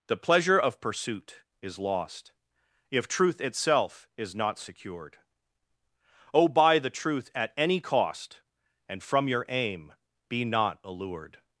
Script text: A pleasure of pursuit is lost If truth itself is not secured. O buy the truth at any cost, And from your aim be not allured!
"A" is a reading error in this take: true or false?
true